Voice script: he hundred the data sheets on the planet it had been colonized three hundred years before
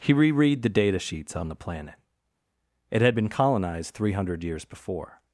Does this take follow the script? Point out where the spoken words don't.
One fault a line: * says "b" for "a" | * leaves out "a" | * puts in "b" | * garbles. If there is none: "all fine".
* says "reread" for "hundred"